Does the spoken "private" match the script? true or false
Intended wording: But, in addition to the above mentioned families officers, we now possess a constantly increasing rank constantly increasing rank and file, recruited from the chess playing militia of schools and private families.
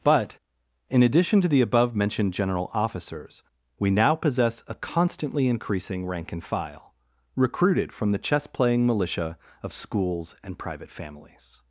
true